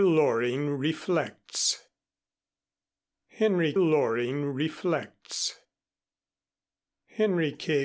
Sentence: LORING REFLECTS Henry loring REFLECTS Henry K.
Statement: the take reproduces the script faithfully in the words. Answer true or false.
true